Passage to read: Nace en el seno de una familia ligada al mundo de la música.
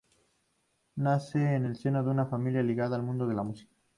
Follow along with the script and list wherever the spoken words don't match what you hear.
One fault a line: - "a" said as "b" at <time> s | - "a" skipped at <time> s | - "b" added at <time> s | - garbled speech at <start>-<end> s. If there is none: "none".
none